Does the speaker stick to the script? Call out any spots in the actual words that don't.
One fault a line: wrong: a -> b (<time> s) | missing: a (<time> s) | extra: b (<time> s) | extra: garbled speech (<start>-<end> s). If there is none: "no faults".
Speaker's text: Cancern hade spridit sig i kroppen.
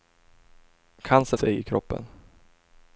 missing: hade spridit (1.4 s)